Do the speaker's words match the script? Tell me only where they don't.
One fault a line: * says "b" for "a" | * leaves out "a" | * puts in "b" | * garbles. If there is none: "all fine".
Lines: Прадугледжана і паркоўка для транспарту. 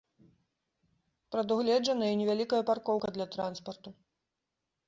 * puts in "невялікая"